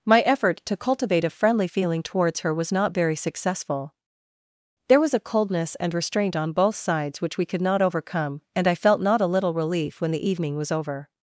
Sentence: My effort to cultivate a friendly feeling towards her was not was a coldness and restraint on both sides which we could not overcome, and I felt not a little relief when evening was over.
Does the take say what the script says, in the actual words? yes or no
no